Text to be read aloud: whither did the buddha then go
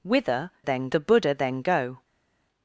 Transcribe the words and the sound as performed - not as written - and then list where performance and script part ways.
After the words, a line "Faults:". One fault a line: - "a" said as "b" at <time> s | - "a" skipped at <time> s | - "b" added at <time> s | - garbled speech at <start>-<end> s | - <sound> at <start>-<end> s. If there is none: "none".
whither then the buddha then go
Faults:
- "did" said as "then" at 0.6 s